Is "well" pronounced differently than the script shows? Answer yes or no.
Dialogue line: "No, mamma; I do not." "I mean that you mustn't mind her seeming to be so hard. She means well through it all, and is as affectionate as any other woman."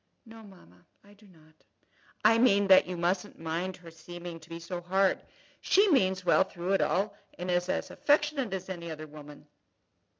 no